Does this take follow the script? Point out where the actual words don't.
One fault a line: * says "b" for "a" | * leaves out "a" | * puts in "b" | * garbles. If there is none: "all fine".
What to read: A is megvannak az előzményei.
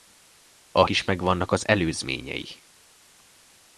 all fine